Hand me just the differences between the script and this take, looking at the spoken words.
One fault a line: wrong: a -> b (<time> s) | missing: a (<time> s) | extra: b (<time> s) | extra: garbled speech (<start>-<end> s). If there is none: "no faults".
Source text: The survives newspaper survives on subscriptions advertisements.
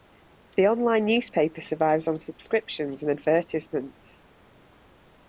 wrong: survives -> online (0.7 s)
extra: and (3.0 s)